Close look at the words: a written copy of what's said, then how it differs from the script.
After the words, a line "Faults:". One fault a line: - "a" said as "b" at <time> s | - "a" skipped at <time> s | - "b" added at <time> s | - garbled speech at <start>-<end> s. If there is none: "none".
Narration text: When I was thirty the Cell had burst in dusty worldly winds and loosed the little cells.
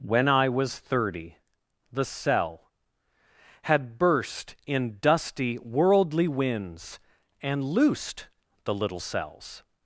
When I was thirty the Cell had burst in dusty worldly winds and loosed the little cells.
Faults:
none